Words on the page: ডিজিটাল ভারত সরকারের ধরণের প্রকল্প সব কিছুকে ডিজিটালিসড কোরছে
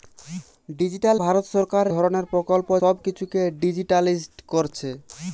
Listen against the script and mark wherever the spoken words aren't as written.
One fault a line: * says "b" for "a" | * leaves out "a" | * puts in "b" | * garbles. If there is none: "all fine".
all fine